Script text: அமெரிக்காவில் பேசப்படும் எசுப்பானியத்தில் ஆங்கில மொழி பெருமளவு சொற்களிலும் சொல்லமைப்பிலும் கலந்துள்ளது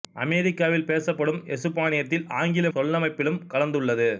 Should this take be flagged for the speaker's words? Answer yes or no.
yes